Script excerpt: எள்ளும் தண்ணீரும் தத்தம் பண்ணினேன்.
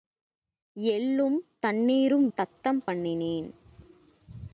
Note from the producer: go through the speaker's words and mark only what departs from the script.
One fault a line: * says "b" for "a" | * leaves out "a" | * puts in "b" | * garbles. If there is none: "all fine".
all fine